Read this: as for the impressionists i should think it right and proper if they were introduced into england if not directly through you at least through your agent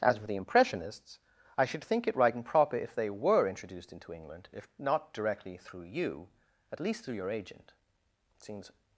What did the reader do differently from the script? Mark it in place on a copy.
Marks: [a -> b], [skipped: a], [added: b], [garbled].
as for the impressionists i should think it right and proper if they were introduced into england if not directly through you at least through your agent [added: it seems]